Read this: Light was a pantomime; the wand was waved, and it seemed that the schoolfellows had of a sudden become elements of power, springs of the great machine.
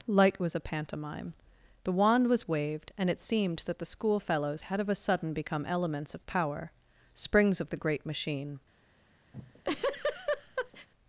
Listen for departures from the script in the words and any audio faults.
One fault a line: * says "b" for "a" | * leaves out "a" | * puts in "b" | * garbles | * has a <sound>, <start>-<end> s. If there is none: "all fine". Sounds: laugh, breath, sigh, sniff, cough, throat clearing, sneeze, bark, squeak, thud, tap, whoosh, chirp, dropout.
* has a laugh, 9.3-10.9 s